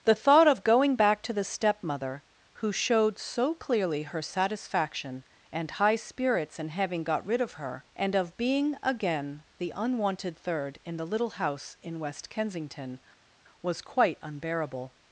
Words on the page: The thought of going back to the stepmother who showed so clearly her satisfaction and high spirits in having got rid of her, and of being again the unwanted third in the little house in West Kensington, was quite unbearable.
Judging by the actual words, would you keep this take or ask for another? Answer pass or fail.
pass